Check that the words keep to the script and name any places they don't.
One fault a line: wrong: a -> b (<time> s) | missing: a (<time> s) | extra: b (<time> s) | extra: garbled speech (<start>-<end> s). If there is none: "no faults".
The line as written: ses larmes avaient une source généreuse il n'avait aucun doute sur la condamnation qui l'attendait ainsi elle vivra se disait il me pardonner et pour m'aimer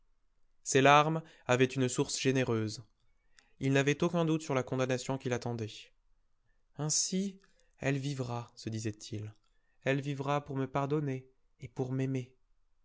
extra: elle vivra pour (9.8 s)